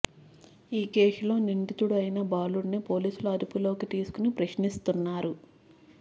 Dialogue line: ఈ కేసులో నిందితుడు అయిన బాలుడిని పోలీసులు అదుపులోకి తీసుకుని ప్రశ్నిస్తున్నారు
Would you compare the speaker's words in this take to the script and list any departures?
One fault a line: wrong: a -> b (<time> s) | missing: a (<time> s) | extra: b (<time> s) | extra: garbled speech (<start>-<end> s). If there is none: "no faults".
no faults